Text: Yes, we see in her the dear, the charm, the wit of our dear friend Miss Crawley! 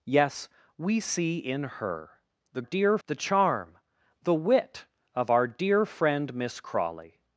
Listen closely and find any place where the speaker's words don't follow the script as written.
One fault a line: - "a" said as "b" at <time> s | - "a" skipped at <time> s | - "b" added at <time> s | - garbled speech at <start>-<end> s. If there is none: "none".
none